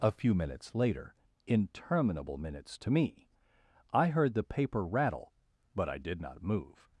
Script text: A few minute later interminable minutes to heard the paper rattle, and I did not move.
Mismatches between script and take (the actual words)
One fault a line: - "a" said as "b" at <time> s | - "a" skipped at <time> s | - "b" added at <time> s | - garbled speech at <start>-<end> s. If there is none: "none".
- "minute" said as "minutes" at 0.3 s
- "me I" added at 2.9 s
- "and" said as "but" at 5.8 s